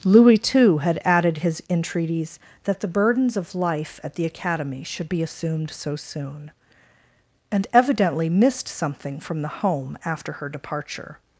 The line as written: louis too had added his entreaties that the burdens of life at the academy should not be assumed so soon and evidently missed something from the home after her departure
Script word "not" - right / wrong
wrong